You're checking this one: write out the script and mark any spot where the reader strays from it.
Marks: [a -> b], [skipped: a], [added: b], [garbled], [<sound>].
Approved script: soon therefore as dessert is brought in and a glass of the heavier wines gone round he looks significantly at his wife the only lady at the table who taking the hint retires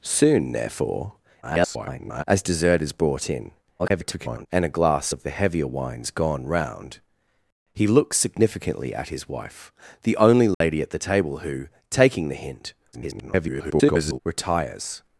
soon therefore [garbled] as dessert is brought in [garbled] and a glass of the heavier wines gone round he looks significantly at his wife the only lady [dropout] at the table who taking the hint [garbled] retires